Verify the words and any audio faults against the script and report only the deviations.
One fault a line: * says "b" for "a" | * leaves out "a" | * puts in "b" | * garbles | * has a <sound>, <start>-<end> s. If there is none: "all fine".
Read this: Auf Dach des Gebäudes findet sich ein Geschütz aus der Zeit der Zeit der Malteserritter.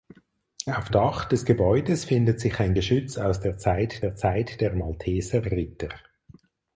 all fine